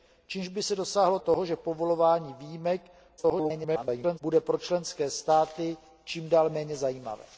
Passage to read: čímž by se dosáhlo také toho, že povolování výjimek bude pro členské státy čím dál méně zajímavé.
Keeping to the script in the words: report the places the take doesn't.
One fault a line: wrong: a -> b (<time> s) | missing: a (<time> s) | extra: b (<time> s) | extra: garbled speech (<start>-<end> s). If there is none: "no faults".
missing: také (1.2 s)
extra: garbled speech (3.2-4.2 s)